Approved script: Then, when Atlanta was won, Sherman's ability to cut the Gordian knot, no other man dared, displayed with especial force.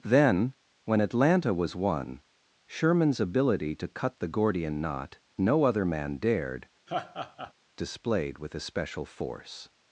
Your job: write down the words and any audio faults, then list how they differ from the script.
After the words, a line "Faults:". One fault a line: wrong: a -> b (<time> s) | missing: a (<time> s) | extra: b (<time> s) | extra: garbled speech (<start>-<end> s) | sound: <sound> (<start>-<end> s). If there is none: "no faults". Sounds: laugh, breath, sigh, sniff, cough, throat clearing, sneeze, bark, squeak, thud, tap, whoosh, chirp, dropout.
Then, when Atlanta was won, Sherman's ability to cut the Gordian knot, no other man dared, displayed with especial force.
Faults:
sound: laugh (6.9-7.5 s)